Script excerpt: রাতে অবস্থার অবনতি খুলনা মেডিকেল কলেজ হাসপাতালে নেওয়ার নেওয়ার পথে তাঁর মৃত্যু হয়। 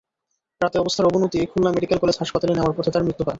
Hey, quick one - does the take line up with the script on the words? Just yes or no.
no